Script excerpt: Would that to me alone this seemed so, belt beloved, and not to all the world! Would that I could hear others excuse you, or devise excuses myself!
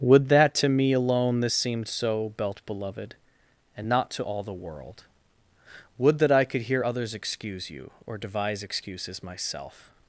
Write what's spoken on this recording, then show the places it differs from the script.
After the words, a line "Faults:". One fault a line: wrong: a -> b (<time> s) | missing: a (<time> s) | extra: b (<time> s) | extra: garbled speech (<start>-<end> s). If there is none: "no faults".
Would that to me alone this seemed so, belt beloved, and not to all the world! Would that I could hear others excuse you, or devise excuses myself!
Faults:
no faults